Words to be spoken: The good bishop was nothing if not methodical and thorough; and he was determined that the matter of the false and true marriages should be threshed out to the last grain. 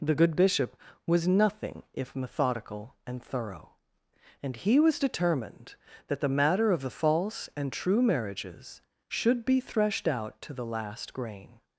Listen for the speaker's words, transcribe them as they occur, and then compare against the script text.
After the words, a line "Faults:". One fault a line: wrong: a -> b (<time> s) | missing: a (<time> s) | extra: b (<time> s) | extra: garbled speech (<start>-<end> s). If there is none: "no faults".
The good bishop was nothing if methodical and thorough; and he was determined that the matter of the false and true marriages should be threshed out to the last grain.
Faults:
missing: not (2.2 s)